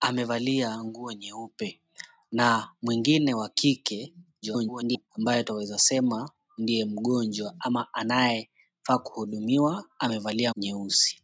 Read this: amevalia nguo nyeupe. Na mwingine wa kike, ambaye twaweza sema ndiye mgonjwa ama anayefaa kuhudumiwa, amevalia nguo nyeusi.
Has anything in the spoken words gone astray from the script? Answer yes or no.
yes